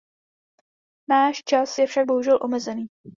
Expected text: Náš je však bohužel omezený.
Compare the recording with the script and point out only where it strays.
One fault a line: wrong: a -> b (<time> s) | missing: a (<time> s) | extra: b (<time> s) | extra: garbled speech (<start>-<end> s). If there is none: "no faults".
extra: čas (1.4 s)